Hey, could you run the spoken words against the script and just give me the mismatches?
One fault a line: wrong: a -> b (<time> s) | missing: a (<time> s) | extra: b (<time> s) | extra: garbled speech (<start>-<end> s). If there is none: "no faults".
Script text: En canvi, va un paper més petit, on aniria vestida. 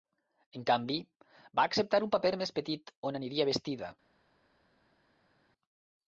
extra: acceptar (1.7 s)